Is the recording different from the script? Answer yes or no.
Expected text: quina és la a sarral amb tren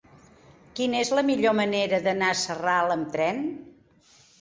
yes